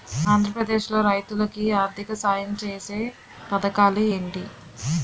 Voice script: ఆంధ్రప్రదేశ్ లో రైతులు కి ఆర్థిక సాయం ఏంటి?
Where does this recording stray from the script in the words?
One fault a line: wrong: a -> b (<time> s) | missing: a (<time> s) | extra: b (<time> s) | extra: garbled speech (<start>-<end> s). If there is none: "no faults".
extra: ఛేసే పథకాలు (2.6 s)